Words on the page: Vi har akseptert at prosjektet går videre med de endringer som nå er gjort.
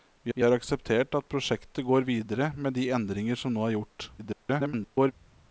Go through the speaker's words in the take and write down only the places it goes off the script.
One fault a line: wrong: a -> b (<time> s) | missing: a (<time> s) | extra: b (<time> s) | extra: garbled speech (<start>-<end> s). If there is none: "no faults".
extra: vi (0.3 s)
extra: garbled speech (4.2-5.1 s)